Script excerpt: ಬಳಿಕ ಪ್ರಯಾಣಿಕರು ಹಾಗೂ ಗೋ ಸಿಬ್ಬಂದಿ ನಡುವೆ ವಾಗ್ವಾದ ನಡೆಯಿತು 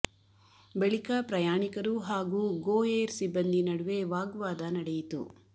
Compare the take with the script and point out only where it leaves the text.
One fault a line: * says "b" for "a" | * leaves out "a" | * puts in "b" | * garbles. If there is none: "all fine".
* puts in "ಏರ್"